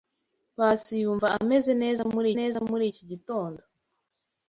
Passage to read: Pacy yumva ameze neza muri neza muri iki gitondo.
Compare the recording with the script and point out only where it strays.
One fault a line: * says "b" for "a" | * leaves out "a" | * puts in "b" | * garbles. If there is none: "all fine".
all fine